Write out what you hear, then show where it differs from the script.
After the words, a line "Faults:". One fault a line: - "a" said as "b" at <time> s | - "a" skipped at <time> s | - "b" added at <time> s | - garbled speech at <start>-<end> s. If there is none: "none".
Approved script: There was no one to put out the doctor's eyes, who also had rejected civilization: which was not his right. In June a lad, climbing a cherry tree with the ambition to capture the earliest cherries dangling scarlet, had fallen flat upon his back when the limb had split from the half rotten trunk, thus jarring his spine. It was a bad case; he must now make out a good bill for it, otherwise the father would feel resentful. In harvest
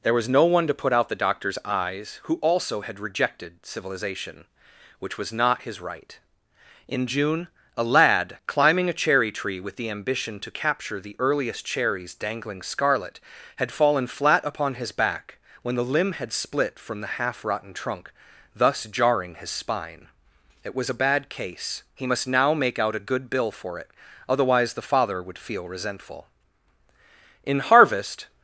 There was no one to put out the doctor's eyes, who also had rejected civilization: which was not his right. In June a lad, climbing a cherry tree with the ambition to capture the earliest cherries dangling scarlet, had fallen flat upon his back when the limb had split from the half rotten trunk, thus jarring his spine. It was a bad case; he must now make out a good bill for it, otherwise the father would feel resentful. In harvest
Faults:
none